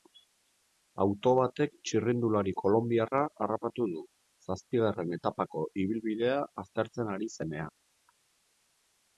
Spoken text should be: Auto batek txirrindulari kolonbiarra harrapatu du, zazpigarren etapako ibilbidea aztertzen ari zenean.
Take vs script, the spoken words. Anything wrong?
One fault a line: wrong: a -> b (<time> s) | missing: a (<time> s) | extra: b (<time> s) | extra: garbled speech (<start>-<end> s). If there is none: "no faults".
no faults